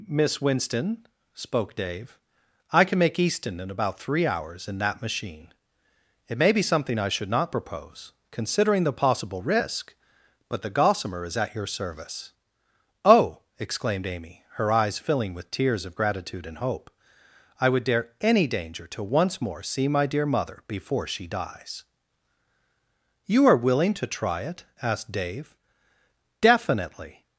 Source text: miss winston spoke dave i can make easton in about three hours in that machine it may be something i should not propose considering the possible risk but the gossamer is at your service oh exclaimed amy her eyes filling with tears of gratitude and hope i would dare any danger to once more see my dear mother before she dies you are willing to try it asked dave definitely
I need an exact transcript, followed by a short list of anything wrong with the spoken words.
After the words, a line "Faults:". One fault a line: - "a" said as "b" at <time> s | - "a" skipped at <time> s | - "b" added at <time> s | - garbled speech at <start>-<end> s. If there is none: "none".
miss winston spoke dave i can make easton in about three hours in that machine it may be something i should not propose considering the possible risk but the gossamer is at your service oh exclaimed amy her eyes filling with tears of gratitude and hope i would dare any danger to once more see my dear mother before she dies you are willing to try it asked dave definitely
Faults:
none